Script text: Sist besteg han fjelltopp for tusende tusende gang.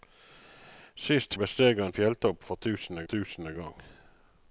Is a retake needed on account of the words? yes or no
no